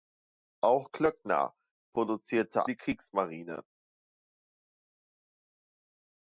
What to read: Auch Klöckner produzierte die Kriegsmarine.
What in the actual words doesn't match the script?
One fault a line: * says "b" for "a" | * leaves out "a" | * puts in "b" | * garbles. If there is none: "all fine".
all fine